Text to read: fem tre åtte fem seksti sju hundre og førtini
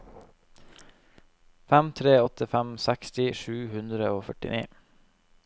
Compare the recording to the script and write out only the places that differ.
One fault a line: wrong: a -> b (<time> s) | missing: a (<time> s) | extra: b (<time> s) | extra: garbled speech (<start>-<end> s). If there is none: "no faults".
no faults